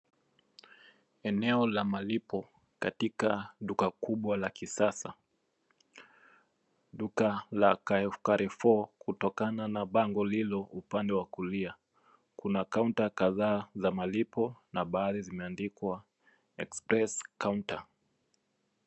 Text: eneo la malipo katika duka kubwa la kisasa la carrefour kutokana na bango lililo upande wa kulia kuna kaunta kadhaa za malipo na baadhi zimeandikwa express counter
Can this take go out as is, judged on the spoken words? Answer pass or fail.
fail